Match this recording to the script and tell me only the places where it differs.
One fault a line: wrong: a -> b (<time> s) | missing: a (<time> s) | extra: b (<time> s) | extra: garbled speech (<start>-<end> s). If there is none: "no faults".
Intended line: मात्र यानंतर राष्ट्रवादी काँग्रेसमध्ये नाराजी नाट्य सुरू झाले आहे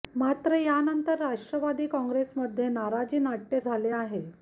missing: सुरू (3.6 s)